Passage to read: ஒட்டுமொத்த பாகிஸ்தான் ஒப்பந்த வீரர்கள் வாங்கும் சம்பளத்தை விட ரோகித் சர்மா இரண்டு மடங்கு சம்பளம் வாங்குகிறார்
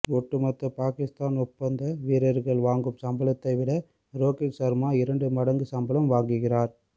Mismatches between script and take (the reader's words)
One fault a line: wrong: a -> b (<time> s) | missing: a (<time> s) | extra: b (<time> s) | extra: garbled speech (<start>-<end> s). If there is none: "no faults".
no faults